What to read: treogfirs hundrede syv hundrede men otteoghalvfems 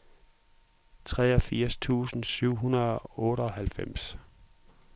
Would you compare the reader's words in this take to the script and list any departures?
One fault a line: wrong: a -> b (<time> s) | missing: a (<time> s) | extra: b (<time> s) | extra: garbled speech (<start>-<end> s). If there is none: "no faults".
wrong: hundrede -> tusind (1.7 s)
wrong: men -> og (3.0 s)